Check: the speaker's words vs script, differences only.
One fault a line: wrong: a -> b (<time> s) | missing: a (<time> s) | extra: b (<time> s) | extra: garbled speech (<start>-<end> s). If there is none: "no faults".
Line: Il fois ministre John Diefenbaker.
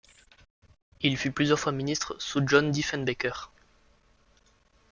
extra: fut plusieurs (1.1 s)
extra: sous (2.2 s)